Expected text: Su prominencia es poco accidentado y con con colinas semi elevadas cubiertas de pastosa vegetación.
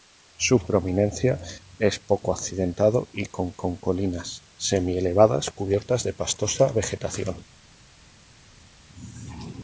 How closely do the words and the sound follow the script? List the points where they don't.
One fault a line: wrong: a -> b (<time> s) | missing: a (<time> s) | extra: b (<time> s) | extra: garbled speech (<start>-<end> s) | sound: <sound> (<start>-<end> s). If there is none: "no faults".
no faults